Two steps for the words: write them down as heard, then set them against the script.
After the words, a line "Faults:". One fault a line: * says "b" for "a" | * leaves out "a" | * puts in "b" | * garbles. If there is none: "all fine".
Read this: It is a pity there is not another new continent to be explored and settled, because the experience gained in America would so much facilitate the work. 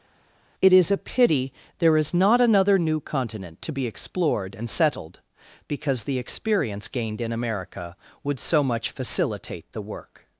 It is a pity there is not another new continent to be explored and settled, because the experience gained in America would so much facilitate the work.
Faults:
all fine